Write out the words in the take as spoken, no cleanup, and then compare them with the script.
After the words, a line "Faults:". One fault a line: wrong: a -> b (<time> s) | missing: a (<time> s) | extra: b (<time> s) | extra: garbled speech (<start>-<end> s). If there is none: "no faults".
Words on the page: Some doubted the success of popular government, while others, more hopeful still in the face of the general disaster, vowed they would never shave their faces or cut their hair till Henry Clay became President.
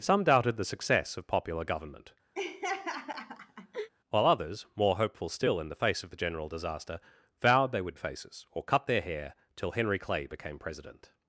Some doubted the success of popular government, while others, more hopeful still in the face of the general disaster, vowed they would faces or cut their hair till Henry Clay became President.
Faults:
missing: never shave their (8.0 s)